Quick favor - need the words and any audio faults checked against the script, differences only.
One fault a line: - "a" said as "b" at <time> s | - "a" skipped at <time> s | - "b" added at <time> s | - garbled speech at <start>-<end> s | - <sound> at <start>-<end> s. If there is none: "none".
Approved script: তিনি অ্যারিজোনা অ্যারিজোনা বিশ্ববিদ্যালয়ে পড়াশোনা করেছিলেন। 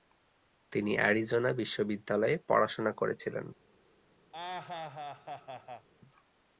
- "অ্যারিজোনা" skipped at 1.5 s
- laugh at 4.3-5.9 s